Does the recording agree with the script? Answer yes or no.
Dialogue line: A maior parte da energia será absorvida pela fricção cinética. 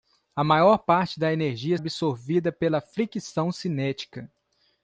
no